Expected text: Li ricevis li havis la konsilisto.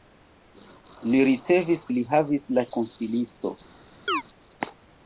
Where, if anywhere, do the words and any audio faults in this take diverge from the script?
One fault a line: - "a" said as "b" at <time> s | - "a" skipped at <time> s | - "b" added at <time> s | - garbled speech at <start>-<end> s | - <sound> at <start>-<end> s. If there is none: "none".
- chirp at 4.1-4.2 s